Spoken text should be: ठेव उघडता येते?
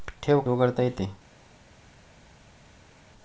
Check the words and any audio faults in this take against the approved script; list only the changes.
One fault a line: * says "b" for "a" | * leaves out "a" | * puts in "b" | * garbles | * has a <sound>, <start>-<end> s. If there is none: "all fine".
all fine